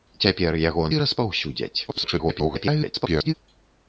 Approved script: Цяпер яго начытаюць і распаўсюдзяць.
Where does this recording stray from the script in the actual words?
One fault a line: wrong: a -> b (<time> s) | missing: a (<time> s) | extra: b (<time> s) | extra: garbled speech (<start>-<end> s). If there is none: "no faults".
missing: начытаюць (0.8 s)
extra: garbled speech (1.9-3.3 s)